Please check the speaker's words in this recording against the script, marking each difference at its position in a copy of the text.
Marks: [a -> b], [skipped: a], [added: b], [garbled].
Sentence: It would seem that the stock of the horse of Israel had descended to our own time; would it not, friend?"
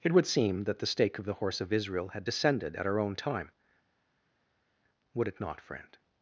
It would seem that the [stock -> stake] of the horse of Israel had descended [to -> at] our own time; would it not, friend?"